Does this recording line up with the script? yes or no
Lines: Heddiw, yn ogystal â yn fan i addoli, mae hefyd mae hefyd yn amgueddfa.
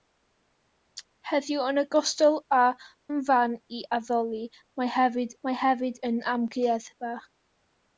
yes